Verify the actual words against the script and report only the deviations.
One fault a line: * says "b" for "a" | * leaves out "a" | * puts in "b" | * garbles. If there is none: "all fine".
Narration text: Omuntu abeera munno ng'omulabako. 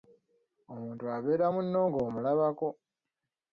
all fine